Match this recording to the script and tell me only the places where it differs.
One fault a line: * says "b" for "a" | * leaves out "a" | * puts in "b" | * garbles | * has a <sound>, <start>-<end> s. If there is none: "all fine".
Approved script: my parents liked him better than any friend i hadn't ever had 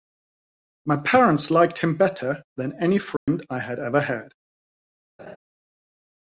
* has a dropout, 3.2-3.3 s
* says "had" for "hadn't"
* has a laugh, 5.2-5.4 s